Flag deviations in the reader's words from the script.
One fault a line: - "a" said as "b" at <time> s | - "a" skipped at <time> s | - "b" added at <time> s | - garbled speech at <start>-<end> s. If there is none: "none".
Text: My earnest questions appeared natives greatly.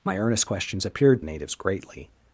none